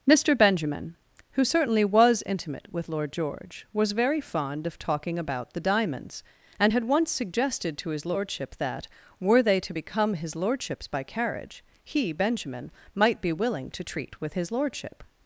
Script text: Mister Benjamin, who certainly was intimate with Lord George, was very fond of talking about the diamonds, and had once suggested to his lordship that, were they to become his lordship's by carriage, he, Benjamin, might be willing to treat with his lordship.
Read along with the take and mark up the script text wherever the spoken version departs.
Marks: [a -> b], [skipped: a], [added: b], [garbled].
Mister Benjamin, who certainly was intimate with Lord George, was very fond of talking about the diamonds, and had once suggested to his lordship that, were they to become his lordship's by carriage, he, Benjamin, might be willing to treat with his lordship.